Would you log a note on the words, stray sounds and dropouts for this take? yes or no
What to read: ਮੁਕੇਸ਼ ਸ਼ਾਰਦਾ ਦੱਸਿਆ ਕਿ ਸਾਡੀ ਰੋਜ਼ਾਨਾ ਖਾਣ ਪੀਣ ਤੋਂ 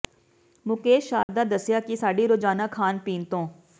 yes